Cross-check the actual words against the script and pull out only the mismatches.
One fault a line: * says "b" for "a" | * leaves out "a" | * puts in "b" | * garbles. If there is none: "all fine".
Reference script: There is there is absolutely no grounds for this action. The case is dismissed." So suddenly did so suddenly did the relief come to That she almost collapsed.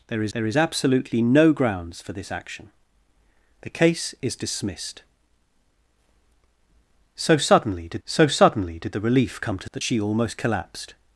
all fine